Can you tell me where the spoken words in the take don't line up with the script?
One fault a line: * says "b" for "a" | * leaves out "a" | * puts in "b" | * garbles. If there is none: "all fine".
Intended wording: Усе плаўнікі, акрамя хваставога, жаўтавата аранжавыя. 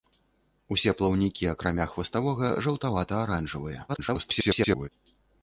* garbles